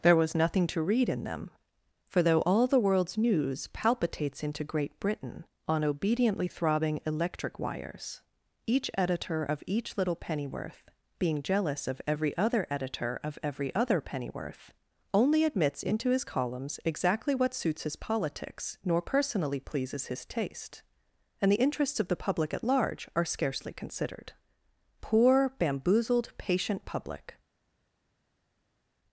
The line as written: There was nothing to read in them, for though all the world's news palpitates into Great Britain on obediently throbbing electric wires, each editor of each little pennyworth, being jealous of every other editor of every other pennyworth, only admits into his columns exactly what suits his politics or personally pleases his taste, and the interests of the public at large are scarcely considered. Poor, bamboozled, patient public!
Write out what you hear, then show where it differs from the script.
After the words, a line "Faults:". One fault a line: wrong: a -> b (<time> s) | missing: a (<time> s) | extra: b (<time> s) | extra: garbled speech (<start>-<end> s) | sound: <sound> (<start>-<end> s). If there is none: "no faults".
There was nothing to read in them, for though all the world's news palpitates into Great Britain on obediently throbbing electric wires, each editor of each little pennyworth, being jealous of every other editor of every other pennyworth, only admits into his columns exactly what suits his politics nor personally pleases his taste, and the interests of the public at large are scarcely considered. Poor, bamboozled, patient public!
Faults:
wrong: or -> nor (18.8 s)